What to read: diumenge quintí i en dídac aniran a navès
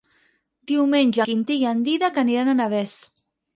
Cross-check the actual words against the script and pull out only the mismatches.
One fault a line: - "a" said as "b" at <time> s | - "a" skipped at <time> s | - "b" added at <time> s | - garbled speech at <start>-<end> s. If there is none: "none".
none